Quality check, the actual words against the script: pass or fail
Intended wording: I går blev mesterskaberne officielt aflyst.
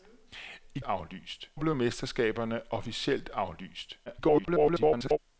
fail